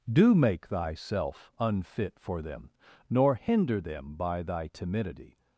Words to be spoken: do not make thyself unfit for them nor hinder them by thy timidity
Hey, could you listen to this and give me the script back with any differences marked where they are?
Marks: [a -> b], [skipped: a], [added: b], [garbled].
do [skipped: not] make thyself unfit for them nor hinder them by thy timidity